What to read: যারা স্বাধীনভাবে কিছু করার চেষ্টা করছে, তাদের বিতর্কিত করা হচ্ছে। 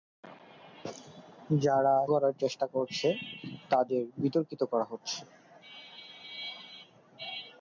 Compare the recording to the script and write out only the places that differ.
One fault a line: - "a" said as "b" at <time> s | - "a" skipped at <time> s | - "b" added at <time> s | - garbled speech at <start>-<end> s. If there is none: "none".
- "স্বাধীনভাবে কিছু" skipped at 1.9 s